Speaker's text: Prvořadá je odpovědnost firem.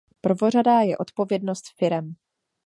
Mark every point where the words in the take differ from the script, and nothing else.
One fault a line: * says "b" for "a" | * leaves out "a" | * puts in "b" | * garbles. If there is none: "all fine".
all fine